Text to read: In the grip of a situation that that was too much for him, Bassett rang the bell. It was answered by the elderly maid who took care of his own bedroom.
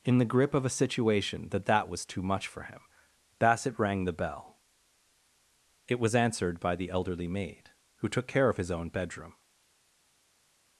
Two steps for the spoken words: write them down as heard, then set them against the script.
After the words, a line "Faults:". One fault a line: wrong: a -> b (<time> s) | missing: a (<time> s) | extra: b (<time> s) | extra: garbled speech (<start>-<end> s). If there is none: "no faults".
In the grip of a situation that that was too much for him, Bassett rang the bell. It was answered by the elderly maid who took care of his own bedroom.
Faults:
no faults